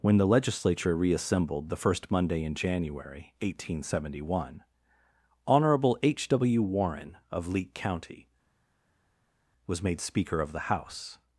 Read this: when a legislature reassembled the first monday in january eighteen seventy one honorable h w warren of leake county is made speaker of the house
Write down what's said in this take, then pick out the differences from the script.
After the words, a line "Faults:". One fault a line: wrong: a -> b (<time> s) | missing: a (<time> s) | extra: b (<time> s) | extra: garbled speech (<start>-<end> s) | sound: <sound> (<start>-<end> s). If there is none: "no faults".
when the legislature reassembled the first monday in january eighteen seventy one honorable h w warren of leake county was made speaker of the house
Faults:
wrong: a -> the (0.2 s)
wrong: is -> was (9.6 s)